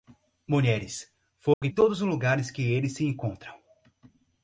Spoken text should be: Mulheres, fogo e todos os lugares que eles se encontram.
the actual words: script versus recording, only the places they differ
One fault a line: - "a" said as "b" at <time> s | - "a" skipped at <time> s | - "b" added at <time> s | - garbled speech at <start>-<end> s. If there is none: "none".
none